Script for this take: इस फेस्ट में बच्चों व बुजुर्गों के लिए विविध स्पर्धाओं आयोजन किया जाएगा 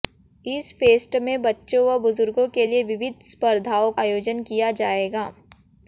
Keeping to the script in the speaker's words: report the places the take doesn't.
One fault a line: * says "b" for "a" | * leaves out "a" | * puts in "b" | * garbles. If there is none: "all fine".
all fine